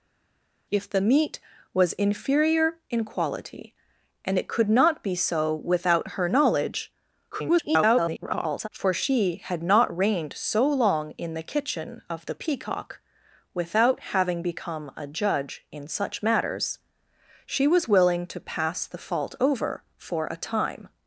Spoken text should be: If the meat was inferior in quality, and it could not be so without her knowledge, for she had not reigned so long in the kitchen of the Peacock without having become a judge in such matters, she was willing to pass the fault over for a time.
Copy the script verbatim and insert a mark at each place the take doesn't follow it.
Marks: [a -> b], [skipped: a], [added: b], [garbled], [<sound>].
If the meat was inferior in quality, and it could not be so without her knowledge, [garbled] for she had not reigned so long in the kitchen of the Peacock without having become a judge in such matters, she was willing to pass the fault over for a time.